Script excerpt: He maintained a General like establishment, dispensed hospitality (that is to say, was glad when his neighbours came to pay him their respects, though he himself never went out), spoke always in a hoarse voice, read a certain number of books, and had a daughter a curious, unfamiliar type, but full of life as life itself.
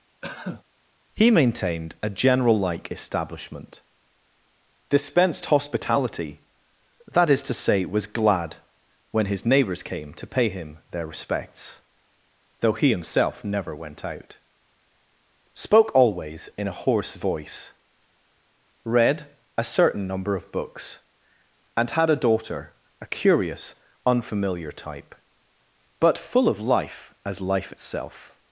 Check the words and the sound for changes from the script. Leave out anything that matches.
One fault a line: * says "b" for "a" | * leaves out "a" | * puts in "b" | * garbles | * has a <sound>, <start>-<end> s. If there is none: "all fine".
* has a cough, 0.2-0.6 s